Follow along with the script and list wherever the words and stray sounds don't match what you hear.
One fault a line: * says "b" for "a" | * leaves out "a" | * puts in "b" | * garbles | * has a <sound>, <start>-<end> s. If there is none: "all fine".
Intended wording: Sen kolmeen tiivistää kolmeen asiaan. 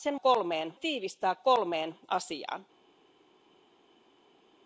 all fine